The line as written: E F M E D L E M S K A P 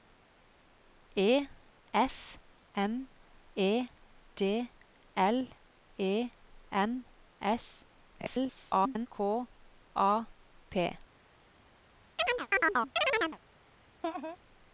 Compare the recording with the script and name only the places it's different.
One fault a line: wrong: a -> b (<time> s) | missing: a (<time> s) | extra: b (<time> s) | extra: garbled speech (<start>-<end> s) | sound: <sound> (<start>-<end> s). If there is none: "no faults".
extra: garbled speech (8.2-9.1 s)
sound: chirp (12.2-13.4 s)
sound: laugh (14.0-14.4 s)